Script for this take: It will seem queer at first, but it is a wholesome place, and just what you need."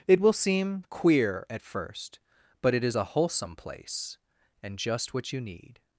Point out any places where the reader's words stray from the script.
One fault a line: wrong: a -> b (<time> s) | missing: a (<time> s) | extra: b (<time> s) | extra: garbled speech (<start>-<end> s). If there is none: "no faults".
no faults